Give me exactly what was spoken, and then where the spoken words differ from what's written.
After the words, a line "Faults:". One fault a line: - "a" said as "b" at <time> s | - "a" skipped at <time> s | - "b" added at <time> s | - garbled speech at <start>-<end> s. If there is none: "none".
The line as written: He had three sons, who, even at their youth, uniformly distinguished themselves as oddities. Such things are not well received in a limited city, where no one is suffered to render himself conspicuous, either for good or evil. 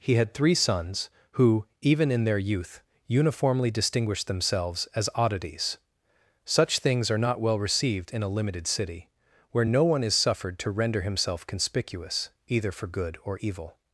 He had three sons, who, even in their youth, uniformly distinguished themselves as oddities. Such things are not well received in a limited city, where no one is suffered to render himself conspicuous, either for good or evil.
Faults:
- "at" said as "in" at 2.1 s